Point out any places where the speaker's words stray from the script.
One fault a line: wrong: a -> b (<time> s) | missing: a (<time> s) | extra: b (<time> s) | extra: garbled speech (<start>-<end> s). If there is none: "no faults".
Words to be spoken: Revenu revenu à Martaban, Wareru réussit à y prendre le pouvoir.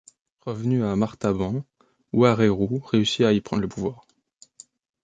missing: revenu (0.8 s)